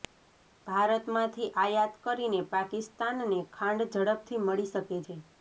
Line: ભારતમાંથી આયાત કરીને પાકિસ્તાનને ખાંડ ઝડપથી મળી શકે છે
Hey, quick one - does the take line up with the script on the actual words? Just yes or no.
yes